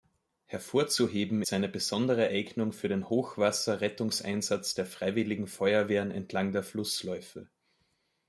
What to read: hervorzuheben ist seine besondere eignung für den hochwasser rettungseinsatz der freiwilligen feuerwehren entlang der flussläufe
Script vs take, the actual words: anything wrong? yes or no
yes